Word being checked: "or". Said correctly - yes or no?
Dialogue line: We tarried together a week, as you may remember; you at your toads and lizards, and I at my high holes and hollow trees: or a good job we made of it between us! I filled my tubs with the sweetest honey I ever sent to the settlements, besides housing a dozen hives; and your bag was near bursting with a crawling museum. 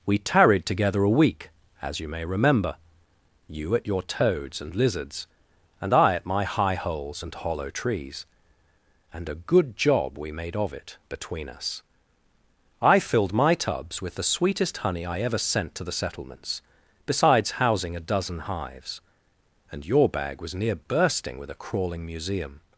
no